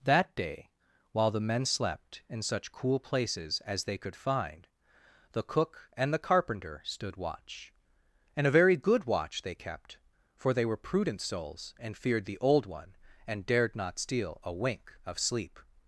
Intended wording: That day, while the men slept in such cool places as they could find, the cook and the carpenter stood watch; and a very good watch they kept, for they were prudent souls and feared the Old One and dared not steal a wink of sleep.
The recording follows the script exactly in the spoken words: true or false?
true